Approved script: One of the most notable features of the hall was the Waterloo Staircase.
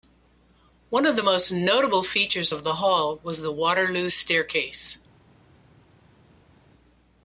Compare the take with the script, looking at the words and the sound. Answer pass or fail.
pass